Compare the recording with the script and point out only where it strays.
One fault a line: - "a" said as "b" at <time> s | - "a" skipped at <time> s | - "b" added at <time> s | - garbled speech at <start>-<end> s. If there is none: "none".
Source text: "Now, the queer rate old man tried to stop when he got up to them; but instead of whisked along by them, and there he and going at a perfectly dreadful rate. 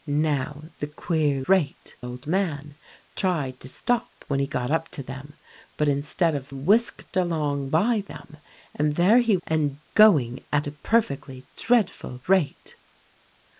none